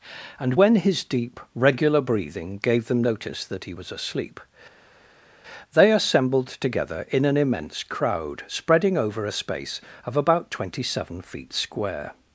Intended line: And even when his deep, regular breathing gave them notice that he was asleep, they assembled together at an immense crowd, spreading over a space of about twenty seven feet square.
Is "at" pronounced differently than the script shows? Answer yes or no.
yes